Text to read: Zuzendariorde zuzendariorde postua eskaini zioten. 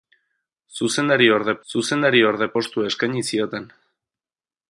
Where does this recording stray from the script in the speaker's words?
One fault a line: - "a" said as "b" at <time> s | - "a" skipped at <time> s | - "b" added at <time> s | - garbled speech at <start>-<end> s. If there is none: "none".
none